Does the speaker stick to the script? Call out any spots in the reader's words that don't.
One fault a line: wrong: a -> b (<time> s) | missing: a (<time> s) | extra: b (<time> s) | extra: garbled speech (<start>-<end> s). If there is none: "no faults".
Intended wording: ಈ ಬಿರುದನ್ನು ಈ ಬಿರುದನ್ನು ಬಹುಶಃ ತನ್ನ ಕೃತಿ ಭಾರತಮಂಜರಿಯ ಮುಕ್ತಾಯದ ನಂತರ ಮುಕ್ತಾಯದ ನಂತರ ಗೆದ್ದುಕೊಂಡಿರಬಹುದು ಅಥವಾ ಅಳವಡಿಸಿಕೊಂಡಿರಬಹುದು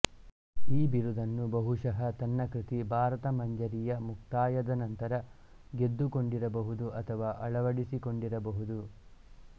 missing: ಈ ಬಿರುದನ್ನು (1.4 s)
missing: ಮುಕ್ತಾಯದ ನಂತರ (5.2 s)